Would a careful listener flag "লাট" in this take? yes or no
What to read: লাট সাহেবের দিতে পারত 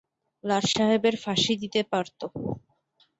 no